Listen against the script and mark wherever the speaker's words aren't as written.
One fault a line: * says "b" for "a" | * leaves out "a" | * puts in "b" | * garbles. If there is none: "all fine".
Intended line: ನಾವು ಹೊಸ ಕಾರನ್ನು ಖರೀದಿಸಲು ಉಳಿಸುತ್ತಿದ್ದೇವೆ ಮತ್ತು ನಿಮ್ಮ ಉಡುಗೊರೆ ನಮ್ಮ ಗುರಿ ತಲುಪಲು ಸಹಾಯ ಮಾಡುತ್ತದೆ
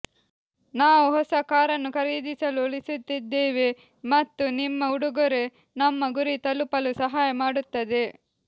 all fine